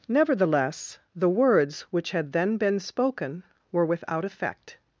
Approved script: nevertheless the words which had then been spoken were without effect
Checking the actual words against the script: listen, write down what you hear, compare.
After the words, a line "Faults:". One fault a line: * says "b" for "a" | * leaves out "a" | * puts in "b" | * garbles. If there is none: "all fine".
nevertheless the words which had then been spoken were without effect
Faults:
all fine